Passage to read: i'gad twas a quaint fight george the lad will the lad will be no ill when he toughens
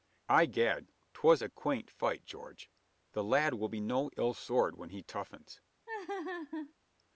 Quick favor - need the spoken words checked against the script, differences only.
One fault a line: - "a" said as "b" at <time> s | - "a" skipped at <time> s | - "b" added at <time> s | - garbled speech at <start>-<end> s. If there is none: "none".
- "the lad will" skipped at 3.7 s
- "sword" added at 4.3 s